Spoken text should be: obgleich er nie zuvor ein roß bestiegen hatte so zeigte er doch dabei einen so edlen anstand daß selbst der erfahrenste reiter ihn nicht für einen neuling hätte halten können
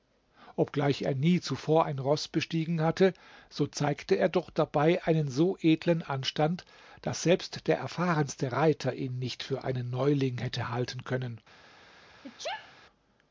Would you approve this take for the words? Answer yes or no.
yes